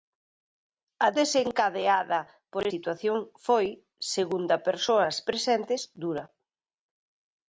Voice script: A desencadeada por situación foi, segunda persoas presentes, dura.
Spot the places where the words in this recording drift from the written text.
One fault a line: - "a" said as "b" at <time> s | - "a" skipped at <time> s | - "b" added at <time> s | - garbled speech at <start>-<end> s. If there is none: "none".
none